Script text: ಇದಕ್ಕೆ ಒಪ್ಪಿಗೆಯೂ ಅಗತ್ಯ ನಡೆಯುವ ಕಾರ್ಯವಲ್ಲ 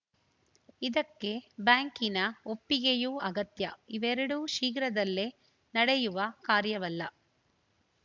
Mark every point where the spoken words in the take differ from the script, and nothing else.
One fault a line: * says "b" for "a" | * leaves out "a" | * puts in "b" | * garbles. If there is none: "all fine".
* puts in "ಬ್ಯಾಂಕಿನ"
* puts in "ಇವೆರಡೂ ಶೀಘ್ರದಲ್ಲೇ"